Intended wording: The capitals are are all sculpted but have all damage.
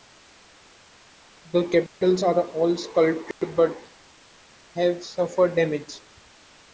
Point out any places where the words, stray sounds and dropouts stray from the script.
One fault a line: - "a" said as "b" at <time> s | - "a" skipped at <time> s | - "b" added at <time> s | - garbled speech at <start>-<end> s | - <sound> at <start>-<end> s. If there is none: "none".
- dropout at 1.9-2.0 s
- "are" skipped at 2.5 s
- dropout at 3.3-3.4 s
- "all" said as "suffered" at 5.0 s